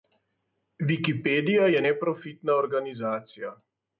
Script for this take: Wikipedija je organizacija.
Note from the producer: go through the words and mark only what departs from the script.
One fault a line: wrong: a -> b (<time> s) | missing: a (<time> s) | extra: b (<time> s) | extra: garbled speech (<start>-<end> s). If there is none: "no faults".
extra: neprofitna (1.9 s)